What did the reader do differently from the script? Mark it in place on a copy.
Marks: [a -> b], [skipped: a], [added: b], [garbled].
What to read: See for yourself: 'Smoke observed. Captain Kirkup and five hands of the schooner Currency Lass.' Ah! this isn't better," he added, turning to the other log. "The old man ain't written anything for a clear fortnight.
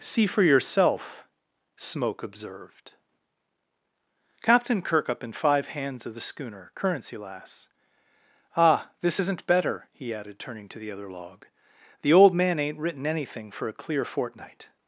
See for yourself: 'Smoke observed. Captain Kirkup and five hands of the schooner Currency Lass.' Ah! this isn't better," he added, turning to the other log. "The old man ain't written anything for a clear fortnight.